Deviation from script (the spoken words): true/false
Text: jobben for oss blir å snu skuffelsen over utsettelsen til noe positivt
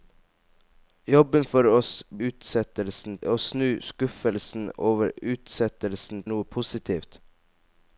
true